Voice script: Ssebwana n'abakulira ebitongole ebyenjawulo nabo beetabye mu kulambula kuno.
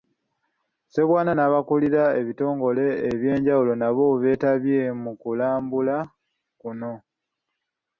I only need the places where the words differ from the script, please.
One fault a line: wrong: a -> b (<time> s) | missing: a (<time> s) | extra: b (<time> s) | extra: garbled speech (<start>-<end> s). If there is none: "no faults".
no faults